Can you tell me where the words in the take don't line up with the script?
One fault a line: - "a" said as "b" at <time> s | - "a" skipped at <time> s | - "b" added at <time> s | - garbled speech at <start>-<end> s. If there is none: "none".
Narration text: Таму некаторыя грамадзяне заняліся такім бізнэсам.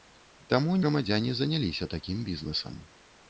- "некаторыя" skipped at 0.8 s